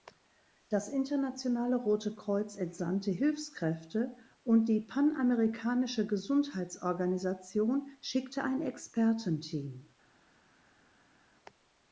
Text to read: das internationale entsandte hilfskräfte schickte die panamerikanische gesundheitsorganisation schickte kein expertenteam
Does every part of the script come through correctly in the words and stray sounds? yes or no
no